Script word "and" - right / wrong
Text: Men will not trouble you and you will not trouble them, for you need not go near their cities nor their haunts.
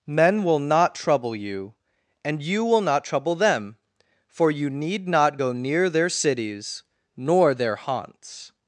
right